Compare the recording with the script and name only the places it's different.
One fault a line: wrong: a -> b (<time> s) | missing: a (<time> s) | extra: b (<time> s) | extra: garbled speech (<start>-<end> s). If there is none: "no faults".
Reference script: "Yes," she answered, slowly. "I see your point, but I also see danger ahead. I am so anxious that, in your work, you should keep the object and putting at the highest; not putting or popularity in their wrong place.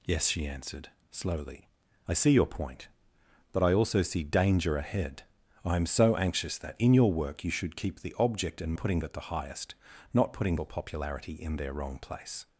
no faults